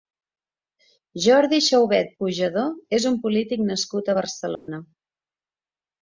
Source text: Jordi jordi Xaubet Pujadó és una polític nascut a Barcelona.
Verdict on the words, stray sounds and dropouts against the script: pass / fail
fail